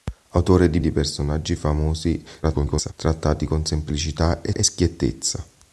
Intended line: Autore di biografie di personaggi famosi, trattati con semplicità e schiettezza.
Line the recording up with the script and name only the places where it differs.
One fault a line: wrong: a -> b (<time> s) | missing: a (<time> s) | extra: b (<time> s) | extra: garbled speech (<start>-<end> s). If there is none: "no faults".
missing: biografie (0.8 s)
extra: garbled speech (2.4-2.9 s)
extra: e (4.5 s)